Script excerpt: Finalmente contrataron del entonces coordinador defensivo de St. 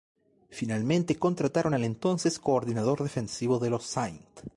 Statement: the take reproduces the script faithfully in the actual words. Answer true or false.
false